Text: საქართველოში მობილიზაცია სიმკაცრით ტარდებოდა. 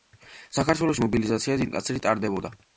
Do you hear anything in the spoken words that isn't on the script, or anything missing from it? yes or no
no